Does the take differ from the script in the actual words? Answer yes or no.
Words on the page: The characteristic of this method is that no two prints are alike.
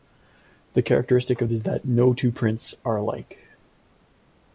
yes